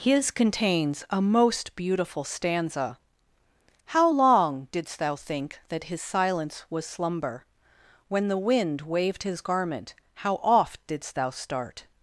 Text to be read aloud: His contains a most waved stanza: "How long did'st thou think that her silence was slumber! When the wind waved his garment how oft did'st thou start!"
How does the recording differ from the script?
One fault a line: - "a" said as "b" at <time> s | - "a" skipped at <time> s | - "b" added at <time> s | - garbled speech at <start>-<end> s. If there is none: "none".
- "waved" said as "beautiful" at 1.8 s
- "her" said as "his" at 5.9 s